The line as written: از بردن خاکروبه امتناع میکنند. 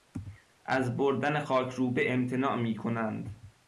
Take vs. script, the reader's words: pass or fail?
pass